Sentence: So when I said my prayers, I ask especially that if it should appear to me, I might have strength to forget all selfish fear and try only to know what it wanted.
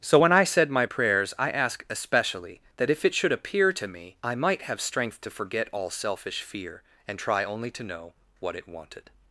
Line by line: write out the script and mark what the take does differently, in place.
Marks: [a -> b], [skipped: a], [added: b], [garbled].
So when I said my prayers, I ask especially that if it should appear to me, I might have strength to forget all selfish fear and try only to know what it wanted.